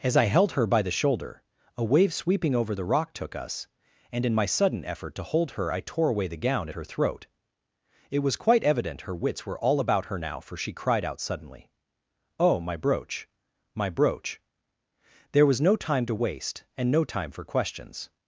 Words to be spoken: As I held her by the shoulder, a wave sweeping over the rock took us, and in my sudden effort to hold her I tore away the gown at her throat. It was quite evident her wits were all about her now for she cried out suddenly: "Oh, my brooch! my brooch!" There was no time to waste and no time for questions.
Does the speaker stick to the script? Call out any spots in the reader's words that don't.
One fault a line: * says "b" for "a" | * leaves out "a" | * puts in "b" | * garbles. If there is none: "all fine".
all fine